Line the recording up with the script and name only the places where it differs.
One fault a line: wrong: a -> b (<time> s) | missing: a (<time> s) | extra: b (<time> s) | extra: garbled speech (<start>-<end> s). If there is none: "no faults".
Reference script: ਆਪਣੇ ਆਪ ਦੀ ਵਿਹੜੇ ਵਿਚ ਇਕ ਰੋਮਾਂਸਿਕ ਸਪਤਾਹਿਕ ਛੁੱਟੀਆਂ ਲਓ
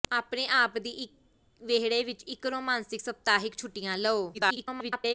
extra: garbled speech (4.3-5.1 s)